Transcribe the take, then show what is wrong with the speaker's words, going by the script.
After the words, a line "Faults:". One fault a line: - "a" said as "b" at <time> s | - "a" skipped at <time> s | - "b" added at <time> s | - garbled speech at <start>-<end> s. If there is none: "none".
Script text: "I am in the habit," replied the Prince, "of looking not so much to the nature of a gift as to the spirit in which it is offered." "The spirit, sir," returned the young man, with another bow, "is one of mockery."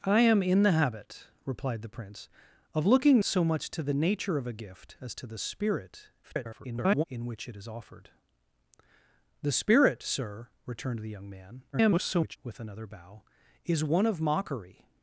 "I am in the habit," replied the Prince, "of looking so much to the nature of a gift as to the spirit [garbled] in which it is offered." "The spirit, sir," returned the young man, [garbled] with another bow, "is one of mockery."
Faults:
- "not" skipped at 3.2 s
- garbled speech at 6.2-7.0 s
- garbled speech at 11.7-12.4 s